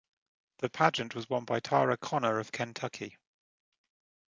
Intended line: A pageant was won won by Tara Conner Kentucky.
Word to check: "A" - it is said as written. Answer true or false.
false